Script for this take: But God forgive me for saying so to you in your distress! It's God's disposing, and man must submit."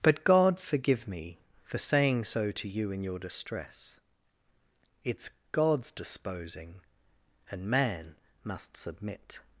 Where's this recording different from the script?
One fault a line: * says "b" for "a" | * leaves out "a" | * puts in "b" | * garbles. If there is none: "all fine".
all fine